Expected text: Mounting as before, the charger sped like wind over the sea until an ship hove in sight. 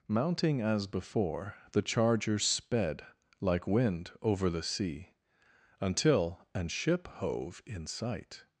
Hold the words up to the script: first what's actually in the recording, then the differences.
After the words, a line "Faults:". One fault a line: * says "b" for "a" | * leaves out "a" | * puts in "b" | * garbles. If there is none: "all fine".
Mounting as before, the charger sped like wind over the sea until an ship hove in sight.
Faults:
all fine